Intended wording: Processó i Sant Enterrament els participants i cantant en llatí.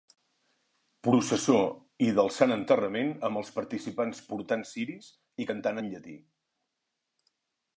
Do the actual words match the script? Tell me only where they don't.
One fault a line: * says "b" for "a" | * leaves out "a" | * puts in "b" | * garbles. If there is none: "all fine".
* puts in "del"
* puts in "amb"
* puts in "portant ciris"